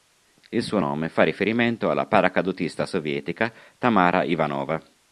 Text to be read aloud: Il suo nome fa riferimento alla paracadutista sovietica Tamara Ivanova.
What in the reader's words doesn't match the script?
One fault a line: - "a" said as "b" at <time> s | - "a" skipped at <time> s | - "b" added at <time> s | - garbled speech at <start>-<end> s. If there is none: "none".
none